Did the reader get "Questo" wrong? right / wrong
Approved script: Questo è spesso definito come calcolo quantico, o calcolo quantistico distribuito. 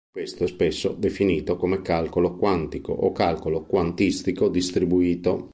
right